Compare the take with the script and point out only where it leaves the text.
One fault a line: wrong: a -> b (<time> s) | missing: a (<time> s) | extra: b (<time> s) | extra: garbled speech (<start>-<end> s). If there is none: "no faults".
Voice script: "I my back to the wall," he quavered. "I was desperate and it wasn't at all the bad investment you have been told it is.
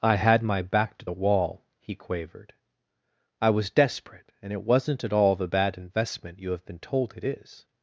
extra: had (0.1 s)